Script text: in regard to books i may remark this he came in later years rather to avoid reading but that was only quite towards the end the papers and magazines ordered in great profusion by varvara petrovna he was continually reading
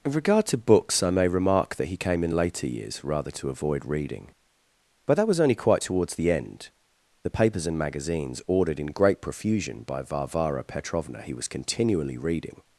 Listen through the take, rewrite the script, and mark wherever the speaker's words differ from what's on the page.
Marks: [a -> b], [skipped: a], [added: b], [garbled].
in regard to books i may remark [this -> that] he came in later years rather to avoid reading but that was only quite towards the end the papers and magazines ordered in great profusion by varvara petrovna he was continually reading